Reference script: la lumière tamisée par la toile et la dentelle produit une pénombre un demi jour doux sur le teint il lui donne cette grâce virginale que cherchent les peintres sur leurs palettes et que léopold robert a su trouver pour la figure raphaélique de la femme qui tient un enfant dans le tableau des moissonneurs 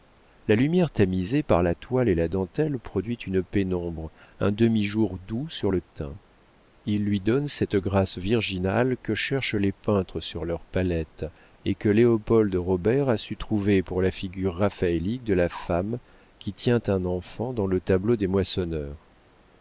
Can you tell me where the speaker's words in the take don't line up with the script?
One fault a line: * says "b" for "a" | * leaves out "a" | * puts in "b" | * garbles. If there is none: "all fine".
all fine